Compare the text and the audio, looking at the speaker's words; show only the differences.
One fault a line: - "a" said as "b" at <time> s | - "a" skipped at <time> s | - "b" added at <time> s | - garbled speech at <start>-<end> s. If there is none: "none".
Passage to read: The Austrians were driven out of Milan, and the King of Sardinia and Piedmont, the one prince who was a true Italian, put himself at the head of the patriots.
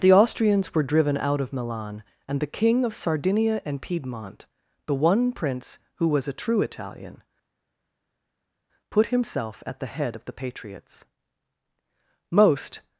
- "Most" added at 12.3 s